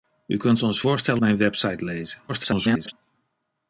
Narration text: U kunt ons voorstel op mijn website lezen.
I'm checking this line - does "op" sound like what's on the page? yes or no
no